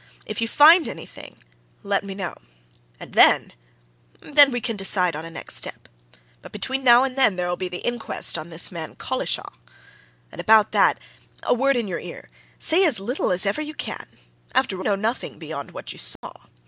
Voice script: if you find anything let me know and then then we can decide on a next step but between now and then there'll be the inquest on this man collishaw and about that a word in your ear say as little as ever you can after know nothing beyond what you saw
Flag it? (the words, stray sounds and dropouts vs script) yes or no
yes